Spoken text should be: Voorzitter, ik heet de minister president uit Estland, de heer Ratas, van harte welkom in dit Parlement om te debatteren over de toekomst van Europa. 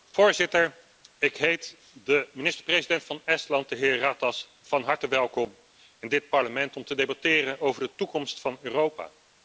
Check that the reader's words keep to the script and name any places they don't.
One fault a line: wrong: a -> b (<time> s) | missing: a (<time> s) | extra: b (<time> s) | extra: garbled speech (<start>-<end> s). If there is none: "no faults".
wrong: uit -> van (3.0 s)